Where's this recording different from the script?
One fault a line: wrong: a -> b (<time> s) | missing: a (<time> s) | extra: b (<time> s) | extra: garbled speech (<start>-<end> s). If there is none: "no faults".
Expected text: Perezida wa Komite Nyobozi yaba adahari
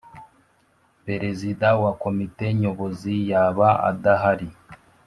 no faults